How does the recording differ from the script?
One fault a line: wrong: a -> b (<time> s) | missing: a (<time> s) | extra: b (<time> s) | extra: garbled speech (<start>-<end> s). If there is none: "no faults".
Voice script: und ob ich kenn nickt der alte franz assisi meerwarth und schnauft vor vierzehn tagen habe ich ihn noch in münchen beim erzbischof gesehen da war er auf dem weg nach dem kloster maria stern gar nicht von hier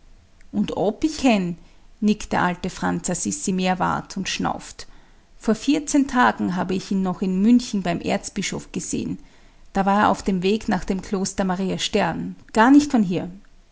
no faults